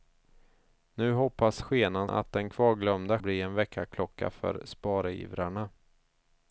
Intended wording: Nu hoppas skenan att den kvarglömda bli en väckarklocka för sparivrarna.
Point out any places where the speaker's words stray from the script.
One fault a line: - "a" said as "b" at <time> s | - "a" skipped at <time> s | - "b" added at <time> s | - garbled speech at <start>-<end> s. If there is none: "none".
none